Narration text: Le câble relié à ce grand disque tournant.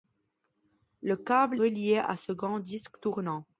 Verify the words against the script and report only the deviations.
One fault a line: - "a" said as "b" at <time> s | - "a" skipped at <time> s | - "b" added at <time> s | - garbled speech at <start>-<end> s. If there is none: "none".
none